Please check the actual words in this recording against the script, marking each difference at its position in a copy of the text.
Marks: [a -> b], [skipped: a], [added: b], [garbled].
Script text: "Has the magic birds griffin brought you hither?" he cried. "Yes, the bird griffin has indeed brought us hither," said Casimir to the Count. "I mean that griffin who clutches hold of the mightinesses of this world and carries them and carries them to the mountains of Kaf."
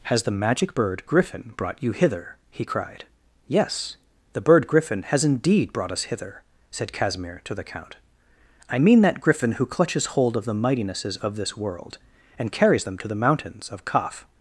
"Has the magic [birds -> bird] griffin brought you hither?" he cried. "Yes, the bird griffin has indeed brought us hither," said Casimir to the Count. "I mean that griffin who clutches hold of the mightinesses of this world and carries them [skipped: and carries them] to the mountains of Kaf."